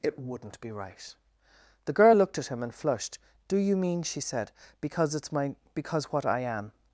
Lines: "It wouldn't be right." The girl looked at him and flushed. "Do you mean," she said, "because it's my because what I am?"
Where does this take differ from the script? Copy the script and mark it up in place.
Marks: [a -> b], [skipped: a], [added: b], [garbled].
"It wouldn't be right." The girl looked at him and flushed. "Do you mean," she said, "because it's my because what I am?"